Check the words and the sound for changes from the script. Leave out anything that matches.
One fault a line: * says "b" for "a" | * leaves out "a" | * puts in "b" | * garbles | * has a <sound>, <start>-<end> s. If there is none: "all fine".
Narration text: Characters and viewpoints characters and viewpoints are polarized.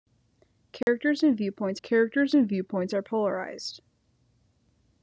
* has a dropout, 0.8-0.9 s